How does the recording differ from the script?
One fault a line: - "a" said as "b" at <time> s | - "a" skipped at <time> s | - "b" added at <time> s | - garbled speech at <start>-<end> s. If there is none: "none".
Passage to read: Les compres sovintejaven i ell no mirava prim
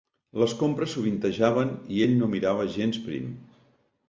- "gens" added at 2.8 s